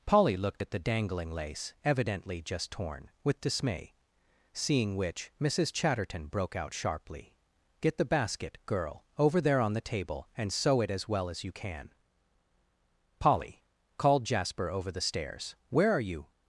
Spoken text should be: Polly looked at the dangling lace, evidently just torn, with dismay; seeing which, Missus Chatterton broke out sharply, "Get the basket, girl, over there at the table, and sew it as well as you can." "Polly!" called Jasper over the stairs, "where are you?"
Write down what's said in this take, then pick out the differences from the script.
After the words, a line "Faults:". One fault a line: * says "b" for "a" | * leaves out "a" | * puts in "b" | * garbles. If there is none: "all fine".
Polly looked at the dangling lace, evidently just torn, with dismay; seeing which, Missus Chatterton broke out sharply, "Get the basket, girl, over there on the table, and sew it as well as you can." "Polly!" called Jasper over the stairs, "where are you?"
Faults:
* says "on" for "at"